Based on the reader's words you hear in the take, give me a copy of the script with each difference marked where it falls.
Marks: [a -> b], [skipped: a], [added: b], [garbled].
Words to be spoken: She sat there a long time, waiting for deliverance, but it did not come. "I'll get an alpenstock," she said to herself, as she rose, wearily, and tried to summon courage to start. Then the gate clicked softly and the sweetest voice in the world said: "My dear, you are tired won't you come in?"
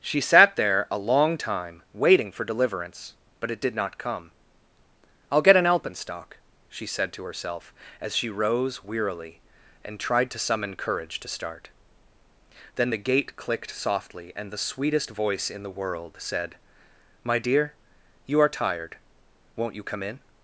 She sat there a long time, waiting for deliverance, but it did not come. "I'll get an alpenstock," she said to herself, as she rose, wearily, and tried to summon courage to start. Then the gate clicked softly and the sweetest voice in the world said: "My dear, you are tired won't you come in?"